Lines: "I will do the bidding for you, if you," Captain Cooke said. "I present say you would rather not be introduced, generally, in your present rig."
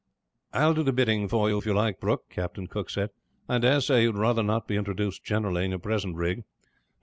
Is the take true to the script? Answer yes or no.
no